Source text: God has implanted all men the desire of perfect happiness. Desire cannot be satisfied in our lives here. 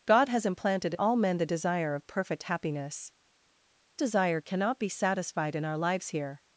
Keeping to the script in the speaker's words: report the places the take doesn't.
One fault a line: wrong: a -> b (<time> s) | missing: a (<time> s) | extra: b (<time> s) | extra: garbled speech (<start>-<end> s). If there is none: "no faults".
no faults